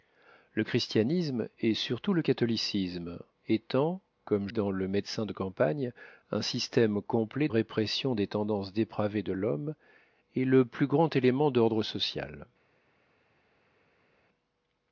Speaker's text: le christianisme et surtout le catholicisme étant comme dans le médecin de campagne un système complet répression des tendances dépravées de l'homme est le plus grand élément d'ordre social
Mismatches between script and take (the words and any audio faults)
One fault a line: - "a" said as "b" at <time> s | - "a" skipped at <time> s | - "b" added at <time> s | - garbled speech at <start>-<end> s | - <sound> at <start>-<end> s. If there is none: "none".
none